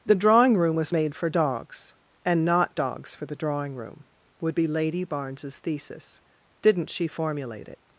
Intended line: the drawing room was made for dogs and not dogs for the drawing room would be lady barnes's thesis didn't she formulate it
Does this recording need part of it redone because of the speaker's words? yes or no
no